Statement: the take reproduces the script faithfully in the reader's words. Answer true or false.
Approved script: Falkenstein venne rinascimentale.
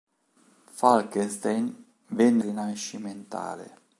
true